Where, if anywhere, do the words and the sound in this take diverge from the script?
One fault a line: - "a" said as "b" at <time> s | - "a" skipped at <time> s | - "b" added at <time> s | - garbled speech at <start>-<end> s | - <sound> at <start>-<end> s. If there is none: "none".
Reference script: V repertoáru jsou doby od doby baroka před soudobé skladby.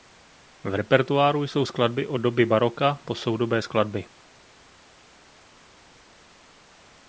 - "doby" said as "skladby" at 1.6 s
- "před" said as "po" at 3.0 s